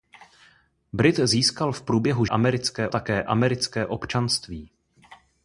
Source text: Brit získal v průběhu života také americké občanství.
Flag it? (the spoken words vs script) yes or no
yes